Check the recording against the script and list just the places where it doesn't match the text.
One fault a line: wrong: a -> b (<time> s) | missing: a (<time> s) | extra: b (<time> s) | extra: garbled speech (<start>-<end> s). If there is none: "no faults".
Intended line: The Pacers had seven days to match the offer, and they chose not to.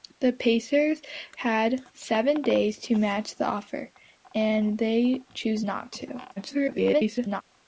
extra: garbled speech (6.4-7.4 s)